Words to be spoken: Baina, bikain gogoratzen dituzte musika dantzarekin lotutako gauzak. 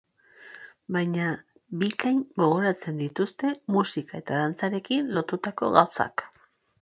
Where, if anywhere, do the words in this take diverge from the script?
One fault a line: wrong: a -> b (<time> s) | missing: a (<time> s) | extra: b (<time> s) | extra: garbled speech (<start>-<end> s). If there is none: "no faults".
extra: eta (4.2 s)